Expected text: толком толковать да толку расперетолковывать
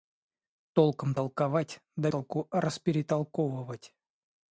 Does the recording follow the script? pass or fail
pass